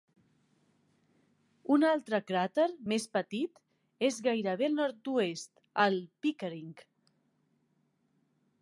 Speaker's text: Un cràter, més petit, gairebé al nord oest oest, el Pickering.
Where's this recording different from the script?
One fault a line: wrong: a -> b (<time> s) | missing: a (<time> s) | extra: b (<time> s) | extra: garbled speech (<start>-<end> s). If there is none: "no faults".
extra: altre (1.9 s)
extra: és (4.1 s)
missing: oest (5.5 s)